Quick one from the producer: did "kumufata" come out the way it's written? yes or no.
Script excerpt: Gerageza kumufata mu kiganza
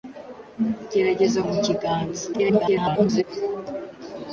no